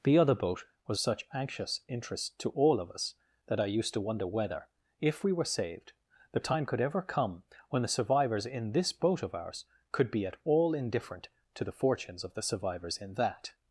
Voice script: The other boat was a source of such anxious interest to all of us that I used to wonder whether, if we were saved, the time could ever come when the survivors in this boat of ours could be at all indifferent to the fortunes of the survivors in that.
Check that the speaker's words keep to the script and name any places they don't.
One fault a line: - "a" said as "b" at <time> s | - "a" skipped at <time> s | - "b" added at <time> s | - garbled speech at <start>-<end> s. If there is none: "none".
- "a source of" skipped at 1.0 s